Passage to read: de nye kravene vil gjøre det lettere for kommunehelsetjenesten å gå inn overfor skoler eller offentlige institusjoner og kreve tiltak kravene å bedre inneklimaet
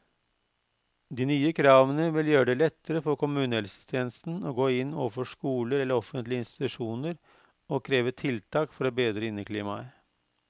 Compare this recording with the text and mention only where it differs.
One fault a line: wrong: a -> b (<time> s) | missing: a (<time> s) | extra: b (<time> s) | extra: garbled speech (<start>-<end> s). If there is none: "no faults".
wrong: kravene -> for (8.8 s)